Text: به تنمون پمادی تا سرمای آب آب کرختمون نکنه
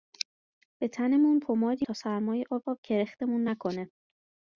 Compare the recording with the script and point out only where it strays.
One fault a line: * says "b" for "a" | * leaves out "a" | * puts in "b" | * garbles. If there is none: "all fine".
all fine